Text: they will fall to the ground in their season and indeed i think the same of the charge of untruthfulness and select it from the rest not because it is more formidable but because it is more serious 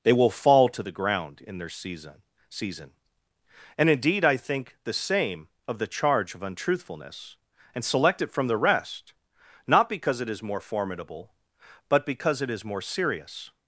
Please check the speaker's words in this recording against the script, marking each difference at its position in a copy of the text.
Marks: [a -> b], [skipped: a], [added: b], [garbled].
they will fall to the ground in their season [added: season] and indeed i think the same of the charge of untruthfulness and select it from the rest not because it is more formidable but because it is more serious